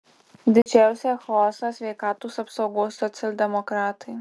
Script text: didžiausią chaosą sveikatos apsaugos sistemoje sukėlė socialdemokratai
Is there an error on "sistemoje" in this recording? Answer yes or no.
yes